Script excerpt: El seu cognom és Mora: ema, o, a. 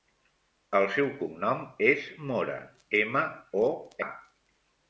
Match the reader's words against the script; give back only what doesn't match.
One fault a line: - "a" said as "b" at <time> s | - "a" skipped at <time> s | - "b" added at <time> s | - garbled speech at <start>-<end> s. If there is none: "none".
none